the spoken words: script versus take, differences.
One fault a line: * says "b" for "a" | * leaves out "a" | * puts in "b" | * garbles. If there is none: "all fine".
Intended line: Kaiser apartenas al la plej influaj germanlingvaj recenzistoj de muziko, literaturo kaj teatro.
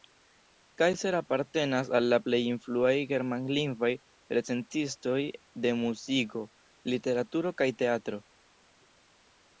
all fine